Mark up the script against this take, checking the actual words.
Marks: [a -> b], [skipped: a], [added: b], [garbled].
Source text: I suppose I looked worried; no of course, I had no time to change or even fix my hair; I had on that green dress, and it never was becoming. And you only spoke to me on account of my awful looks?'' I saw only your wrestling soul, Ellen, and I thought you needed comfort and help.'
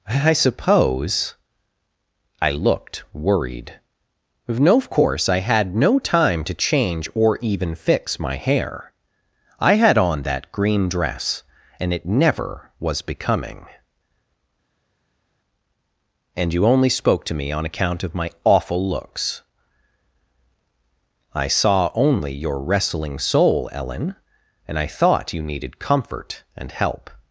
I suppose I looked worried; no of course, I had no time to change or even fix my hair; I had on that green dress, and it never was becoming. And you only spoke to me on account of my awful looks?'' I saw only your wrestling soul, Ellen, and I thought you needed comfort and help.'